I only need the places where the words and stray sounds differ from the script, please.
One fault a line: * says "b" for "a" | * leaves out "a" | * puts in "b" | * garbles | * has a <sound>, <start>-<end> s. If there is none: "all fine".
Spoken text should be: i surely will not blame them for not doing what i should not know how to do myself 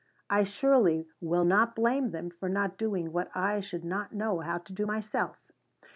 all fine